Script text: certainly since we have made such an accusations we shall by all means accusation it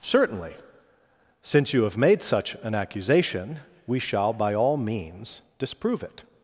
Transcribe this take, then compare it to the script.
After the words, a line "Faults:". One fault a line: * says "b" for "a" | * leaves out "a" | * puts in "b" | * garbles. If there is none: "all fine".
certainly since you have made such an accusation we shall by all means disprove it
Faults:
* says "you" for "we"
* says "accusation" for "accusations"
* says "disprove" for "accusation"